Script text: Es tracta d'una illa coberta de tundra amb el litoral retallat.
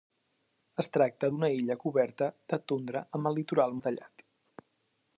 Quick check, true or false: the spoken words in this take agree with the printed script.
true